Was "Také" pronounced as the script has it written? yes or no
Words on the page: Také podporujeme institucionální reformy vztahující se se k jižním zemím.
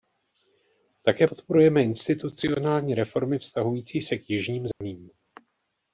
yes